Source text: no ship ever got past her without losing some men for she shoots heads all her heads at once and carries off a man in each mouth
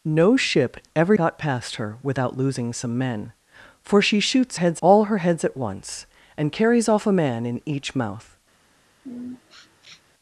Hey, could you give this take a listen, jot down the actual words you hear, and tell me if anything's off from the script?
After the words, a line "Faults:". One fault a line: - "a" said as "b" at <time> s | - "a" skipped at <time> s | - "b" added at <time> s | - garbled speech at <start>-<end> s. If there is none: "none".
no ship ever got past her without losing some men for she shoots heads all her heads at once and carries off a man in each mouth
Faults:
none